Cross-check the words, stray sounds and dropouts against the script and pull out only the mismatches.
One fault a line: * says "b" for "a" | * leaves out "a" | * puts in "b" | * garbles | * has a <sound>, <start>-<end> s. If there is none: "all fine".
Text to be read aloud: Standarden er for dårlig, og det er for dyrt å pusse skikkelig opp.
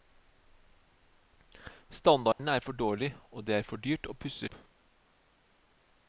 * has a dropout, 2.3-2.4 s
* leaves out "skikkelig"